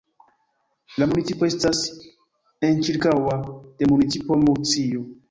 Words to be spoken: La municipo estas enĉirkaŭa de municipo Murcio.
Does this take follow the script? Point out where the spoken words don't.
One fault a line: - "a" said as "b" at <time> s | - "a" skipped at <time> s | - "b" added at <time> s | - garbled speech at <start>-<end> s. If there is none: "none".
none